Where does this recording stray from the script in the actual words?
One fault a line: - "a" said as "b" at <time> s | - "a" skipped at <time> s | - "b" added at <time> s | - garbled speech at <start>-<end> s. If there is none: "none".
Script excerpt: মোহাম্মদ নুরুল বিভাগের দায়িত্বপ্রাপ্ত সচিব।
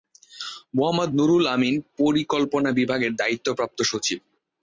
- "আমিন পরিকল্পনা" added at 1.5 s